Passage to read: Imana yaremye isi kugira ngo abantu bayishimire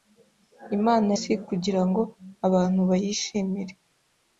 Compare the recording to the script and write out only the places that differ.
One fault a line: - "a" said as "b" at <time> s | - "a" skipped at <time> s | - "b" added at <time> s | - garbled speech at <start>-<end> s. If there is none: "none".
- "yaremye" skipped at 1.1 s